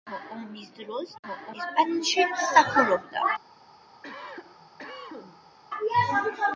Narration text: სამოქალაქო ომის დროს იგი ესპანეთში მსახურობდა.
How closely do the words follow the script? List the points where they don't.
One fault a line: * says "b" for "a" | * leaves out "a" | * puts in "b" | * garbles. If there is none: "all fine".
* says "სამოქალაქო" for "იგი"